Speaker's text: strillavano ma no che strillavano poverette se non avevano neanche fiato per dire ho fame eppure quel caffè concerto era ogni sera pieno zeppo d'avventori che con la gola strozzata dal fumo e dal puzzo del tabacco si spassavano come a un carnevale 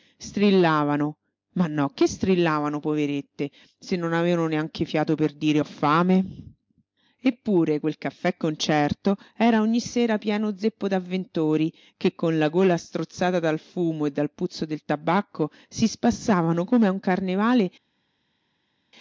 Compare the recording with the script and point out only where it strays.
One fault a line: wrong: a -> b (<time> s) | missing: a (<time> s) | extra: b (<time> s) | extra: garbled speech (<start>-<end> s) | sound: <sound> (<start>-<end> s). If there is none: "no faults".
no faults